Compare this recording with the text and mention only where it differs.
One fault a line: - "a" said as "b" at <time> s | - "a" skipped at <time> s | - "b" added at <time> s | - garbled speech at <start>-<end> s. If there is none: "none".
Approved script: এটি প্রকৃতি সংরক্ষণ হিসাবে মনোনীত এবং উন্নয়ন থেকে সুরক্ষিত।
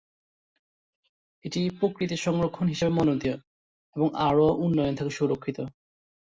- "আরও" added at 4.3 s